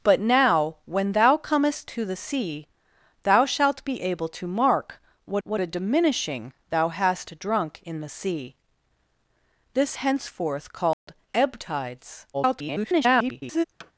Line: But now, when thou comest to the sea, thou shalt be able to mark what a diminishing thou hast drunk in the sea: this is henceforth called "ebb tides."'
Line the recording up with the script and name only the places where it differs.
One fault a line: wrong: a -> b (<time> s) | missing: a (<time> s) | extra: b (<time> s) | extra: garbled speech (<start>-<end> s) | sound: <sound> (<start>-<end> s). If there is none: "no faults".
extra: what (5.4 s)
missing: is (10.0 s)
sound: dropout (10.9-11.1 s)
extra: garbled speech (12.3-13.7 s)
sound: thud (13.8-13.9 s)